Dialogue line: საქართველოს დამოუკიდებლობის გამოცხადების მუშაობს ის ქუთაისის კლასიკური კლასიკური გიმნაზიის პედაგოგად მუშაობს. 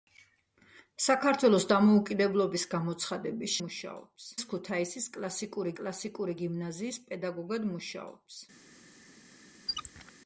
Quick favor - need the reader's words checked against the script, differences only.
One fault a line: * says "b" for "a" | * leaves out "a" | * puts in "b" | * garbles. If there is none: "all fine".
all fine